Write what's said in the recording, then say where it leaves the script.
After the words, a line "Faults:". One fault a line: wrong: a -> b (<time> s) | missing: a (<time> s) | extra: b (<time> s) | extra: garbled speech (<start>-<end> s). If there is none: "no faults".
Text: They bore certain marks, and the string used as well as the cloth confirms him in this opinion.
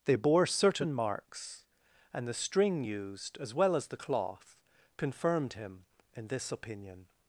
They bore certain marks, and the string used as well as the cloth confirmed him in this opinion.
Faults:
wrong: confirms -> confirmed (5.0 s)